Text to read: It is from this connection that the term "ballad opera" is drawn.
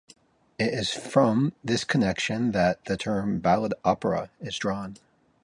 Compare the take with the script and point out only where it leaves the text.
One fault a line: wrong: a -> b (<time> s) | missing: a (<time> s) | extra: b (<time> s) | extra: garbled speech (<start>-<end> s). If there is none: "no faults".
no faults